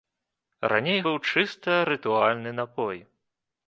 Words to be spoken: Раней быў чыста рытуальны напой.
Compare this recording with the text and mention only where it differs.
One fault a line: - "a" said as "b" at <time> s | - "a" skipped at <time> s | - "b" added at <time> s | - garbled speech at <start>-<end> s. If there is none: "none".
none